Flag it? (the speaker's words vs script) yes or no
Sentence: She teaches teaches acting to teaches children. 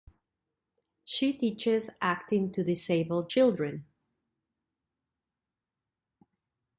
yes